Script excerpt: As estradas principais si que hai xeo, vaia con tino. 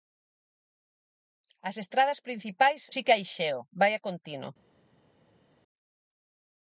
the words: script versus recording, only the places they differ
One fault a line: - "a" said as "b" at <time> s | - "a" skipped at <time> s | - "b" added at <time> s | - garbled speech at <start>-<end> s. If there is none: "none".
none